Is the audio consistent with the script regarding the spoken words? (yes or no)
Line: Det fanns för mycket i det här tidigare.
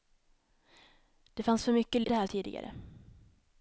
yes